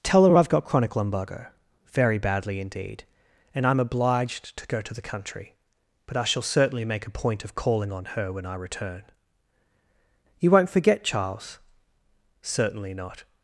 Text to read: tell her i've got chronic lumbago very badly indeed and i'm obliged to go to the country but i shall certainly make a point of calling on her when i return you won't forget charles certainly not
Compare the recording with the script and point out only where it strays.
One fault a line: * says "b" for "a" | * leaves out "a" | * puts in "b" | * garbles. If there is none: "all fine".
all fine